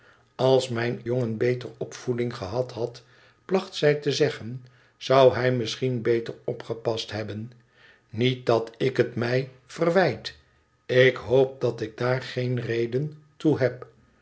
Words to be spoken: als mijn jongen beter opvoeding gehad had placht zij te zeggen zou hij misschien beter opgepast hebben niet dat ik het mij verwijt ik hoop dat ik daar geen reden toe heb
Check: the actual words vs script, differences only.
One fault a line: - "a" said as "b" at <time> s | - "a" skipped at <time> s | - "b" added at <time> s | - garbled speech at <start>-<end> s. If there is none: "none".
none